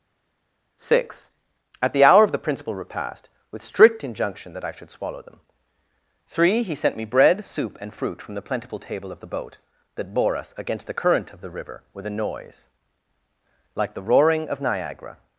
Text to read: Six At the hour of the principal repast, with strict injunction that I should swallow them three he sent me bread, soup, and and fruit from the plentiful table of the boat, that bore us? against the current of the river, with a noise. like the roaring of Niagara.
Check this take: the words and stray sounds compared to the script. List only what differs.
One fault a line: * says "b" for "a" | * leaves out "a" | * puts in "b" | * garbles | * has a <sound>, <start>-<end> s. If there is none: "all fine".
* leaves out "and"